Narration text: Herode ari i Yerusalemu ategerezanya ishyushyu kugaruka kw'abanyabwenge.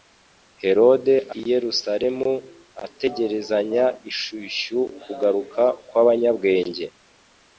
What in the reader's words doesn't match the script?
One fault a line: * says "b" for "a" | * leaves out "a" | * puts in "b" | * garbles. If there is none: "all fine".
* leaves out "ari"